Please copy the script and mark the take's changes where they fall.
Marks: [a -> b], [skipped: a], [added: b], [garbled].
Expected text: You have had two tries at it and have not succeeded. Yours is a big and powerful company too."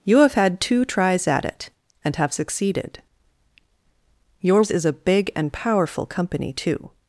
You have had two tries at it and have [skipped: not] succeeded. Yours is a big and powerful company too."